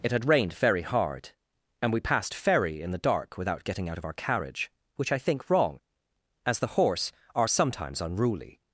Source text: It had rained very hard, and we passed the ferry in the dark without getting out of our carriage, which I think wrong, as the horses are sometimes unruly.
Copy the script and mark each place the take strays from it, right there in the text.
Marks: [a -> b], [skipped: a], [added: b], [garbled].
It had rained very hard, and we passed [skipped: the] ferry in the dark without getting out of our carriage, which I think wrong, as the [horses -> horse] are sometimes unruly.